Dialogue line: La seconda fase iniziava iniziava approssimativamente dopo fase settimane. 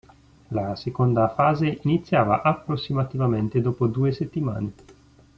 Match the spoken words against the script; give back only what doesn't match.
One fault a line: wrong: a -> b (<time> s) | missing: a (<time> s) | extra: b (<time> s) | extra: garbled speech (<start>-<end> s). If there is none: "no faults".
missing: iniziava (2.4 s)
wrong: fase -> due (3.9 s)